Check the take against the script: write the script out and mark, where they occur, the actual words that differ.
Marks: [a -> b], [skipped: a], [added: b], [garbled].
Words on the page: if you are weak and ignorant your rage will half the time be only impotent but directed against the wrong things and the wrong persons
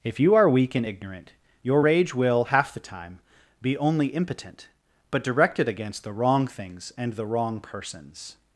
if you are weak and ignorant your rage will half the time be only impotent but directed against the wrong things and the wrong persons